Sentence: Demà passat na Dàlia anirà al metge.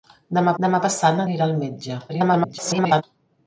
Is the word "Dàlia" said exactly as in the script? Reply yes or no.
no